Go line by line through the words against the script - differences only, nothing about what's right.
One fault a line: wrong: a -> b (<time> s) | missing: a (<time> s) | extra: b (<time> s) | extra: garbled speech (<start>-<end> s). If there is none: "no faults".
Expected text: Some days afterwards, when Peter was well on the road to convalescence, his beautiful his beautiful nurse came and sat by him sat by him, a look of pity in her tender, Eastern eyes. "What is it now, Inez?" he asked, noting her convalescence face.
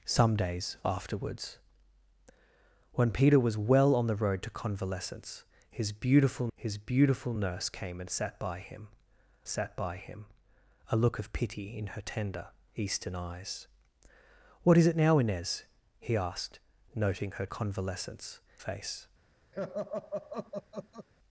no faults